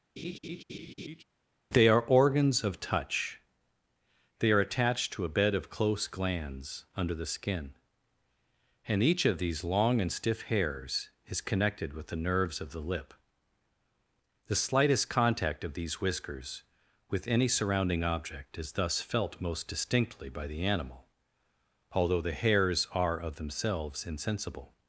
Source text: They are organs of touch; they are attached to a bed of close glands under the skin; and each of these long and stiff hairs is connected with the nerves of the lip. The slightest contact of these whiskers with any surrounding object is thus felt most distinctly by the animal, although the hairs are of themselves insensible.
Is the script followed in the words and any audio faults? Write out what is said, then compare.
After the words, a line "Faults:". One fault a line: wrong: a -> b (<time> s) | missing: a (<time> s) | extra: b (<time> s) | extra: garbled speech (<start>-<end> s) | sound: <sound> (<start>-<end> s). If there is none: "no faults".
They are organs of touch; they are attached to a bed of close glands under the skin; and each of these long and stiff hairs is connected with the nerves of the lip. The slightest contact of these whiskers with any surrounding object is thus felt most distinctly by the animal, although the hairs are of themselves insensible.
Faults:
sound: laugh (0.2-1.2 s)